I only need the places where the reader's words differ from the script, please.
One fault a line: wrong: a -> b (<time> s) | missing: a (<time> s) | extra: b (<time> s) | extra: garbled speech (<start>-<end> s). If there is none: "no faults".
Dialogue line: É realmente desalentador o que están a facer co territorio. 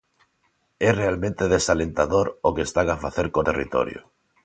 no faults